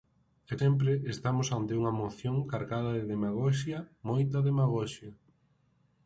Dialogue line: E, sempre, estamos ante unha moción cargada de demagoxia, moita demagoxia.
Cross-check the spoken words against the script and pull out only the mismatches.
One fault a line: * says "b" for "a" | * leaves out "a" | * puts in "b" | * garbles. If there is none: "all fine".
all fine